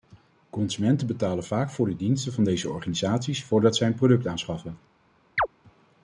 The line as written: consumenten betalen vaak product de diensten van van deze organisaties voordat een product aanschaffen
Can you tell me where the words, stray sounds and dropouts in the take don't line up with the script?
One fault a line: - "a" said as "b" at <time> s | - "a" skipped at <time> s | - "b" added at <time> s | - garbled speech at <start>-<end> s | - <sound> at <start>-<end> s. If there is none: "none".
- "product" said as "voor" at 1.7 s
- "van" skipped at 2.4 s
- "zij" added at 3.8 s
- chirp at 5.4-5.5 s